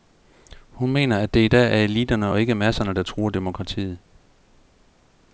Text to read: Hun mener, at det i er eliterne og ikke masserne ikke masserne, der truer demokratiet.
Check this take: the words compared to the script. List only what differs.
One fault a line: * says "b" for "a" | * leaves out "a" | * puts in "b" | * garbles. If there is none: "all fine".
* puts in "dag"
* leaves out "ikke masserne"